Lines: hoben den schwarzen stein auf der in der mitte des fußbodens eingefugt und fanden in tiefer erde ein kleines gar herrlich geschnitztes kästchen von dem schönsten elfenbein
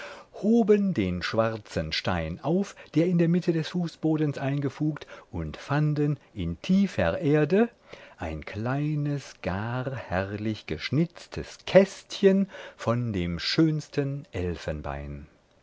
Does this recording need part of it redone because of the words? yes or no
no